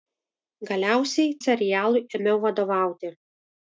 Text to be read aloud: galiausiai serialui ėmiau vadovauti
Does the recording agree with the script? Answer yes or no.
yes